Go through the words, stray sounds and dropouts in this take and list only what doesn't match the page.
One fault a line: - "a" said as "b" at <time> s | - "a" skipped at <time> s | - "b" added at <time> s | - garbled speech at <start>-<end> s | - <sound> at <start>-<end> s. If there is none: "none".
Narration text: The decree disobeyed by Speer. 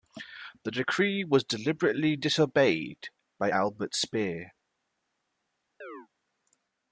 - "was deliberately" added at 1.2 s
- "Albert" added at 3.5 s
- chirp at 5.8-6.1 s